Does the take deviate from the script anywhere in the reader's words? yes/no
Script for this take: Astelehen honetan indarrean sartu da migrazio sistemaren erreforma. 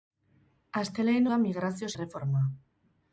yes